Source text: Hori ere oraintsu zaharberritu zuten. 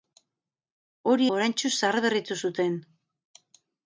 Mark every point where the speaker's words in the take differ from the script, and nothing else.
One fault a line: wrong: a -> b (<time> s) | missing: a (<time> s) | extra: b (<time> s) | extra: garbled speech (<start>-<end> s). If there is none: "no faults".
missing: ere (1.3 s)